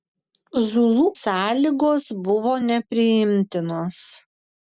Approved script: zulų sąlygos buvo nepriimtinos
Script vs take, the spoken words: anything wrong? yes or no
no